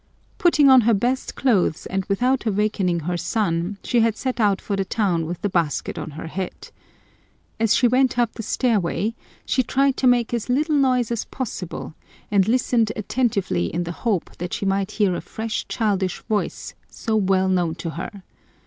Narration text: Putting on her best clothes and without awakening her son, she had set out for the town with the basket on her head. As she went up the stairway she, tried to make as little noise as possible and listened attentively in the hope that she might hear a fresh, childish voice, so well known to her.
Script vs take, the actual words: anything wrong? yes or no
no